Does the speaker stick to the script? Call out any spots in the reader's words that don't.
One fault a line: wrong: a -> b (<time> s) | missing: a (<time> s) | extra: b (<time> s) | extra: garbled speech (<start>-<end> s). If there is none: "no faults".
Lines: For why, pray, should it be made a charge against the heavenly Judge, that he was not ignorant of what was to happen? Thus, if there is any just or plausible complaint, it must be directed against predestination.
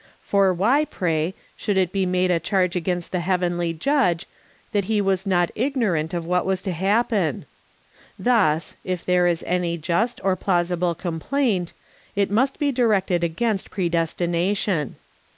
no faults